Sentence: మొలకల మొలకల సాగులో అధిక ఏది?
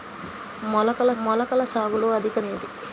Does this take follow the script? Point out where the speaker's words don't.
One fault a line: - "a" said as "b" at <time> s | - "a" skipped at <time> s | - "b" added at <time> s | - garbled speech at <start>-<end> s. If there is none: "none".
none